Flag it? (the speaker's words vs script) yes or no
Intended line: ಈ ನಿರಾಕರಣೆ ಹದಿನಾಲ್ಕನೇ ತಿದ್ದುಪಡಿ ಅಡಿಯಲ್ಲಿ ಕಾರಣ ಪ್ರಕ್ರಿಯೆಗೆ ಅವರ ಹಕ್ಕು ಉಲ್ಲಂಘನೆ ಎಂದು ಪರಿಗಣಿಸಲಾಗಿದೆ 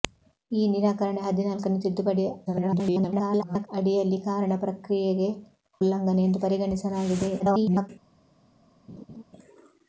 yes